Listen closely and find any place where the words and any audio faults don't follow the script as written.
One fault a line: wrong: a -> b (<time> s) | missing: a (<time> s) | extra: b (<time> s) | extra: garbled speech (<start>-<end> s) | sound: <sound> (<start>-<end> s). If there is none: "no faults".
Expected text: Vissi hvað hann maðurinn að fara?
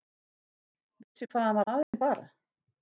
sound: dropout (1.8-1.9 s)